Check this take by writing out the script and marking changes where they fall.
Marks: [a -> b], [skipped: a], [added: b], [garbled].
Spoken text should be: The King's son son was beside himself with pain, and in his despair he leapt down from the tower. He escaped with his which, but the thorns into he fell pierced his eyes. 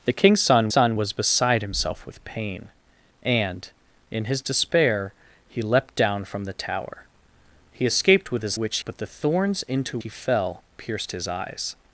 The King's son son was beside himself with pain, and in his despair he leapt down from the tower. He escaped with his which, but the thorns into he fell pierced his eyes.